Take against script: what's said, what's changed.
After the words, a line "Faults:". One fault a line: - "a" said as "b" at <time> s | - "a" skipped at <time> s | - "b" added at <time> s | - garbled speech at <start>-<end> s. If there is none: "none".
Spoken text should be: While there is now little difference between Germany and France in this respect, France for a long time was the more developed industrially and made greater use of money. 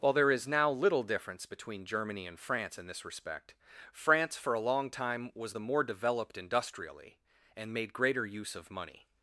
While there is now little difference between Germany and France in this respect, France for a long time was the more developed industrially and made greater use of money.
Faults:
none